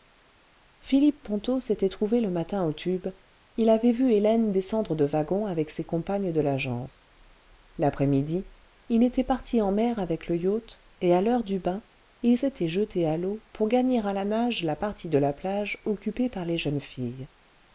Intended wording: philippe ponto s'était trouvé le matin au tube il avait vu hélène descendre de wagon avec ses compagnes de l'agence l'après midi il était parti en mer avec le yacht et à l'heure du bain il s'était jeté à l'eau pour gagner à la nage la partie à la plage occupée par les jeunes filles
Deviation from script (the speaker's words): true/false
true